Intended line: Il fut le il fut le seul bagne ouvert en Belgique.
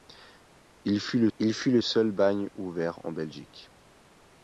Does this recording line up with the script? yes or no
yes